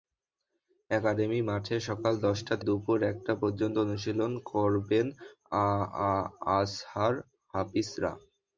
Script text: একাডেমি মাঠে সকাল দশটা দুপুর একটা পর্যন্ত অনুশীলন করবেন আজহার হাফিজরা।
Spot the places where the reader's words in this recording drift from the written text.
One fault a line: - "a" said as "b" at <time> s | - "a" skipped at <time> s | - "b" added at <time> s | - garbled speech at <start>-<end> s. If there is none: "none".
none